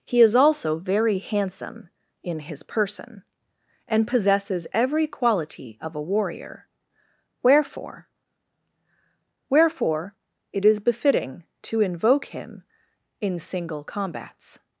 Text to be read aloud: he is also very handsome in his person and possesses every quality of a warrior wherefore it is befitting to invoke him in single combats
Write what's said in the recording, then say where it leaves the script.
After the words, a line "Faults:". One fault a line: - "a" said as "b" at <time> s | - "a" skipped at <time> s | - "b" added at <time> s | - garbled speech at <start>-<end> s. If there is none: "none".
he is also very handsome in his person and possesses every quality of a warrior wherefore wherefore it is befitting to invoke him in single combats
Faults:
- "wherefore" added at 9.5 s